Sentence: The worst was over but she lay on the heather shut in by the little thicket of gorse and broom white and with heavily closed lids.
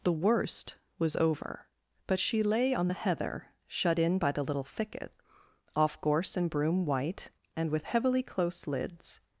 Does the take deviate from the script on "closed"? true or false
true